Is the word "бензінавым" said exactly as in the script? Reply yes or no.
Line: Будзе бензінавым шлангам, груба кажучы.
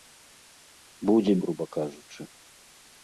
no